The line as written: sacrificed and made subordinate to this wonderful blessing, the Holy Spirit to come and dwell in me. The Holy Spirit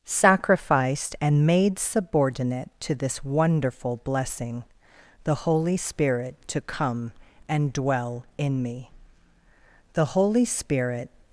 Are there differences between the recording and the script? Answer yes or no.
no